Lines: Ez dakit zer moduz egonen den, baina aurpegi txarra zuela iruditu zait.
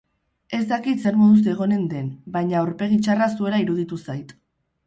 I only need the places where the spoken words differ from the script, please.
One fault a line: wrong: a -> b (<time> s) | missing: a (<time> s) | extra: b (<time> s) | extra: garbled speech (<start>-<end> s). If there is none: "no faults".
no faults